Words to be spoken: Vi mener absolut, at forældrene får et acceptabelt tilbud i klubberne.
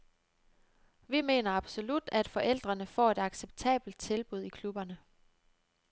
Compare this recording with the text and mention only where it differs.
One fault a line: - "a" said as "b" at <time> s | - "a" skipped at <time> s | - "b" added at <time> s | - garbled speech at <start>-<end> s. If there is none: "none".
none